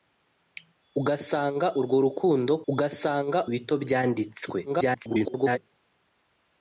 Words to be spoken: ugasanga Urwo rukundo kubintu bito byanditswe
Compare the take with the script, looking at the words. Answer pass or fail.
fail